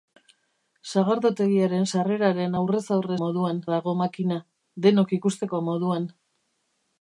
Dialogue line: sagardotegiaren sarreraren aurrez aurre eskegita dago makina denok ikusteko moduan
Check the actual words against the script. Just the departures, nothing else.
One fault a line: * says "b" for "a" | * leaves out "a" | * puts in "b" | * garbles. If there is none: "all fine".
* says "moduan" for "eskegita"